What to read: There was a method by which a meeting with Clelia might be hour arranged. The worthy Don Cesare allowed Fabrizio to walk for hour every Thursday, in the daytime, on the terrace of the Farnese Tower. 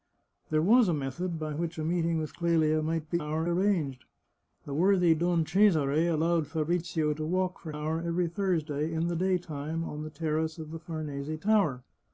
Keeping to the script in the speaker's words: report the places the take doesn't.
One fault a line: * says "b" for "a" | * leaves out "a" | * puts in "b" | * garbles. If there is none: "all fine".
all fine